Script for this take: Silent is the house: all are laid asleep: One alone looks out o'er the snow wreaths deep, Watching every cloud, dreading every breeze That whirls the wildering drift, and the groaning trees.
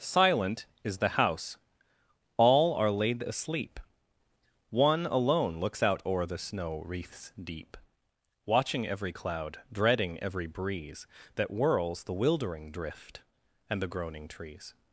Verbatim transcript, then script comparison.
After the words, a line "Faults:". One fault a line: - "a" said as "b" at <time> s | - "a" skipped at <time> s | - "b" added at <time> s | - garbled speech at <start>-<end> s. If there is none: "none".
Silent is the house: all are laid asleep: One alone looks out o'er the snow wreaths deep, Watching every cloud, dreading every breeze That whirls the wildering drift, and the groaning trees.
Faults:
none